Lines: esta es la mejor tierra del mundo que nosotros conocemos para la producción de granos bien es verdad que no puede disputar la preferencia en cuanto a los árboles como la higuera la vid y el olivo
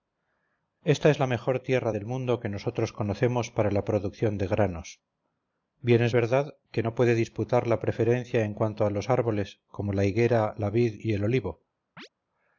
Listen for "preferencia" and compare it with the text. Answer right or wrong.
right